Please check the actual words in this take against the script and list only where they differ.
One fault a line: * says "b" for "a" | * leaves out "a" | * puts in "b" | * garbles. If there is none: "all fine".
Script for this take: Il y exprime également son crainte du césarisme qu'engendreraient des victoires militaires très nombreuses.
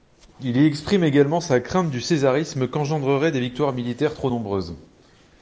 * says "sa" for "son"
* says "trop" for "très"